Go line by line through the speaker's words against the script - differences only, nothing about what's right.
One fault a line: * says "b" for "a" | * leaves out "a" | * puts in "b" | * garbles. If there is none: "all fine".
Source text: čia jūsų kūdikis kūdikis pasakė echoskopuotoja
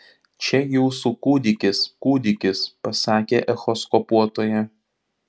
all fine